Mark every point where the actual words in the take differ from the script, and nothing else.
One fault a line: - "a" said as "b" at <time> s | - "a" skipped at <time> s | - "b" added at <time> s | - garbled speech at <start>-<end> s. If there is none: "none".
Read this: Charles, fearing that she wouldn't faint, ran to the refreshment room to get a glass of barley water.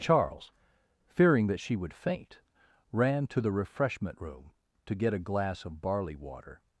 - "wouldn't" said as "would" at 1.8 s